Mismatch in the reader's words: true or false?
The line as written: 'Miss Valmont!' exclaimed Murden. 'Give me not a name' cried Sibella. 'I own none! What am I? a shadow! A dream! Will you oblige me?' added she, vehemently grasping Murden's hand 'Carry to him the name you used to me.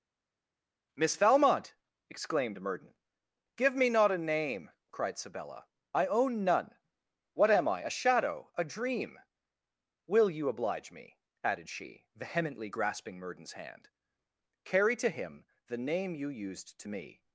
false